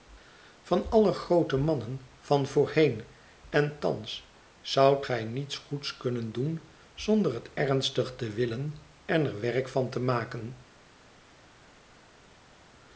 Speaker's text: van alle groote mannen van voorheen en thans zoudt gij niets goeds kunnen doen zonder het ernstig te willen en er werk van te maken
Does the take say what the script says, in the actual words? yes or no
yes